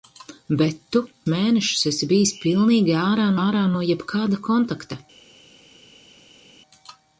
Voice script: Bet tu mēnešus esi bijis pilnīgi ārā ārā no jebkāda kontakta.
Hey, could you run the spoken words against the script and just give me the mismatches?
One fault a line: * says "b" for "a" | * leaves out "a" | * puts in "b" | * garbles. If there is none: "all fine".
all fine